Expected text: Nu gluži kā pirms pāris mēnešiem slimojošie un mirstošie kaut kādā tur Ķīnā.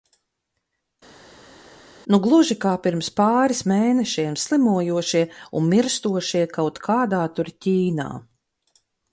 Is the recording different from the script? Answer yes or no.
no